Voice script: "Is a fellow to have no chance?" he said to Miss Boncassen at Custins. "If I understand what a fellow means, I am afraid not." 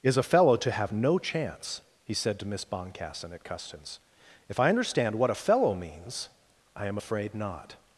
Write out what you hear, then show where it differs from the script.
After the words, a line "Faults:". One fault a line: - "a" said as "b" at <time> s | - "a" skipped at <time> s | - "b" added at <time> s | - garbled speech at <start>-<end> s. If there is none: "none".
"Is a fellow to have no chance?" he said to Miss Boncassen at Custins. "If I understand what a fellow means, I am afraid not."
Faults:
none